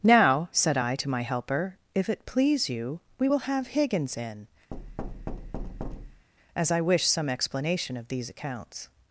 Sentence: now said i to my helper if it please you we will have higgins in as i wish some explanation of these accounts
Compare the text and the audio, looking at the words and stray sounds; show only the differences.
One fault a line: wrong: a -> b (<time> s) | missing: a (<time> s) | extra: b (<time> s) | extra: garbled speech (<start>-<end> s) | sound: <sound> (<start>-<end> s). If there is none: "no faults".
sound: thud (4.7-6.3 s)